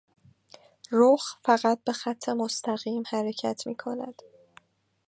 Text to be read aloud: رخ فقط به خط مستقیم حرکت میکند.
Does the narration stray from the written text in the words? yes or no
no